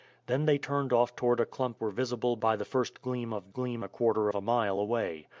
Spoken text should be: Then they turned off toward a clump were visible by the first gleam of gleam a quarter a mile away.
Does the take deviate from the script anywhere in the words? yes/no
no